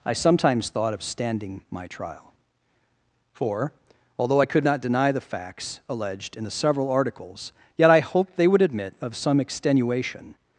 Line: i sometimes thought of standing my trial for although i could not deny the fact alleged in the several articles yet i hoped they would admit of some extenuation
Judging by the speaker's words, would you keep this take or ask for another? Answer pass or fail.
fail